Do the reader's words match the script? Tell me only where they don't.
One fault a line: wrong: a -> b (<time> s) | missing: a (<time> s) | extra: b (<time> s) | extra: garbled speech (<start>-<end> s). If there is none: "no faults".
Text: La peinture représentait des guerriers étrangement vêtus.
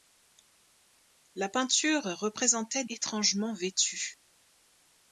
missing: des guerriers (2.9 s)